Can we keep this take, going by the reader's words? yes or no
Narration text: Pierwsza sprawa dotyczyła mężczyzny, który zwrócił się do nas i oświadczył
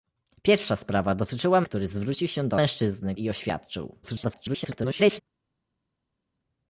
no